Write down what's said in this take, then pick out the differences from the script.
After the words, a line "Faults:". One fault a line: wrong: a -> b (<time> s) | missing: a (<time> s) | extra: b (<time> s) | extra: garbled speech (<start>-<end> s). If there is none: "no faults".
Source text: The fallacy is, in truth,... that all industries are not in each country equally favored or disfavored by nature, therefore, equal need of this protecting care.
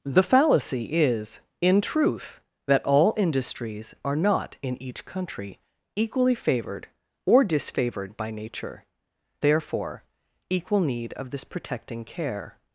The fallacy is, in truth,... that all industries are not in each country equally favored or disfavored by nature, therefore, equal need of this protecting care.
Faults:
no faults